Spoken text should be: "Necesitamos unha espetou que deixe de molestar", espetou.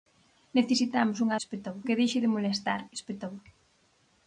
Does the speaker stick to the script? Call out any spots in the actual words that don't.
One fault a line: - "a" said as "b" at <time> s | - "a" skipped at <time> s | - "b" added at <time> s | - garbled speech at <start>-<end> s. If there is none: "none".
none